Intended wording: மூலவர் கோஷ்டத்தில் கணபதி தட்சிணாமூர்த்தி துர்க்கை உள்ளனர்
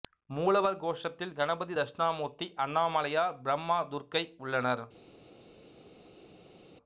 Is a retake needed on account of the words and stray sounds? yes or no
yes